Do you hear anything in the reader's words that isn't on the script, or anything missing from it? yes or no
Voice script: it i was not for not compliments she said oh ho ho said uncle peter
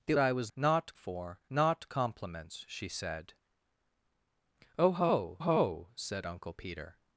no